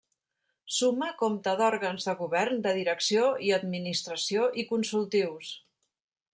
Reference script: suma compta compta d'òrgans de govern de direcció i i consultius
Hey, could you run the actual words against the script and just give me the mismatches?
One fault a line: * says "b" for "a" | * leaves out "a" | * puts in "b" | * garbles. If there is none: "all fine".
* leaves out "compta"
* puts in "administració"